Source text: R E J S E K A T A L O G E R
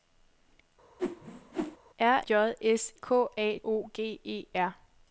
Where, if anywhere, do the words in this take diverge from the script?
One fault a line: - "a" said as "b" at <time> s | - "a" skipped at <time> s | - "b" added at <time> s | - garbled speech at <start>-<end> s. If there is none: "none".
- "E" skipped at 2.2 s
- "E" skipped at 2.9 s
- "T A L" skipped at 3.6 s